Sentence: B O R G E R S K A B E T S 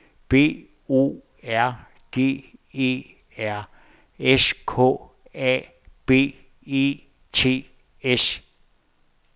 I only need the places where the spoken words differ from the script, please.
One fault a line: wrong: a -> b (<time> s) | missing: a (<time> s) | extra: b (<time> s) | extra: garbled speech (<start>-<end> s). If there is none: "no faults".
no faults